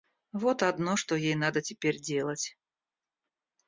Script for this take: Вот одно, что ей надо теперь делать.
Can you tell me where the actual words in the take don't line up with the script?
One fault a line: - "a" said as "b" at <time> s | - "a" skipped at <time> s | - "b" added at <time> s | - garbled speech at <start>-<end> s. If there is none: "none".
none